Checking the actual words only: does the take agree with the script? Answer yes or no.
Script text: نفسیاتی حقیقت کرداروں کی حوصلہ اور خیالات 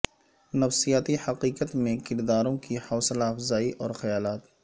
no